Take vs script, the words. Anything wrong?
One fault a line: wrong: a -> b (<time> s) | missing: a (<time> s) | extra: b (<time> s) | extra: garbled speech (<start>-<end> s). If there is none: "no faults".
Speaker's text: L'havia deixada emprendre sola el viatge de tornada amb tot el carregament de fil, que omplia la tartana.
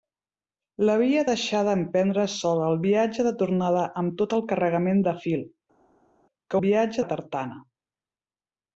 wrong: omplia -> viatge (6.6 s)